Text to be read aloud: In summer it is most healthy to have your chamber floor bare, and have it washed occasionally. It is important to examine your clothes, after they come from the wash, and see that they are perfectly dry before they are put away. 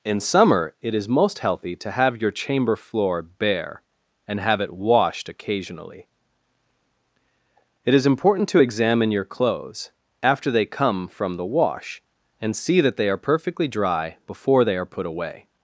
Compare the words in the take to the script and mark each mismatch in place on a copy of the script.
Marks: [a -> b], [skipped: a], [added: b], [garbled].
In summer it is most healthy to have your chamber floor bare, and have it washed occasionally. It is important to examine your clothes, after they come from the wash, and see that they are perfectly dry before they are put away.